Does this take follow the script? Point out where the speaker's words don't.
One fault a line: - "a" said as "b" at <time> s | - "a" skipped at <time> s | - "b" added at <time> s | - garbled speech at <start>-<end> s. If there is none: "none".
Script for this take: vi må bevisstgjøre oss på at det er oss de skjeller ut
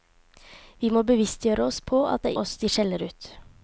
none